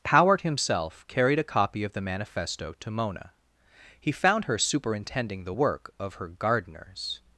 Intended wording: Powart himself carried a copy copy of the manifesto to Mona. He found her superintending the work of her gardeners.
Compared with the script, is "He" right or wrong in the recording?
right